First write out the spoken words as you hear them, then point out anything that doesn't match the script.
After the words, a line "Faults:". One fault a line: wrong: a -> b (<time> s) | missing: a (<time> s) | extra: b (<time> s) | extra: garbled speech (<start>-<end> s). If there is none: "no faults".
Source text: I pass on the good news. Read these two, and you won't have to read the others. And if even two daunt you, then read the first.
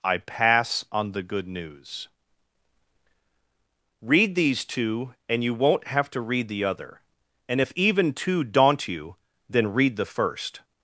I pass on the good news. Read these two, and you won't have to read the other. And if even two daunt you, then read the first.
Faults:
wrong: others -> other (6.6 s)